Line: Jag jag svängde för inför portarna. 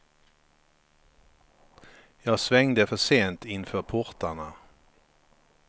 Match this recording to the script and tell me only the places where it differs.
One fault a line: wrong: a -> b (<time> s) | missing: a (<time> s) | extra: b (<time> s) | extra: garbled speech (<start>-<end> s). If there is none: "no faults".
missing: jag (2.4 s)
extra: sent (3.0 s)